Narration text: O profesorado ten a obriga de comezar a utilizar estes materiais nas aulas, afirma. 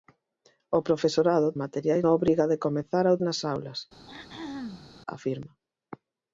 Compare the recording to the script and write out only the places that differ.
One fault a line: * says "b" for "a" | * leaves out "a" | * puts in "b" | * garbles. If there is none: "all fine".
* says "materiais" for "ten"
* leaves out "utilizar estes materiais"